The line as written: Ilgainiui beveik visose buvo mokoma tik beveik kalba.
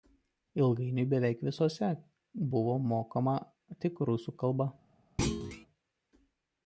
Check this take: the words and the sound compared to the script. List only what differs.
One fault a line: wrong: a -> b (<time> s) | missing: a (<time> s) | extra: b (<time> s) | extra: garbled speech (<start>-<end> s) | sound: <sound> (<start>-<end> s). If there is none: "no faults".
wrong: beveik -> rusų (4.1 s)
sound: thud (5.2-5.7 s)